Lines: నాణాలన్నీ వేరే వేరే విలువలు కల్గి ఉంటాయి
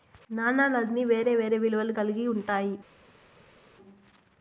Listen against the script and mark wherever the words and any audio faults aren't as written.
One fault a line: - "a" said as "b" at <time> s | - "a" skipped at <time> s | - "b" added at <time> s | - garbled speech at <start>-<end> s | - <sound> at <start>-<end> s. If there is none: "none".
none